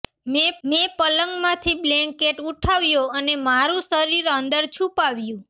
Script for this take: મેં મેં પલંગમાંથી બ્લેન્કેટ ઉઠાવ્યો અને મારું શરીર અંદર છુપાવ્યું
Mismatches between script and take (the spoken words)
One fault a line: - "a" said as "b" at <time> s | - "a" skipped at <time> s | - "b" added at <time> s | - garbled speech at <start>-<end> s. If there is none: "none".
none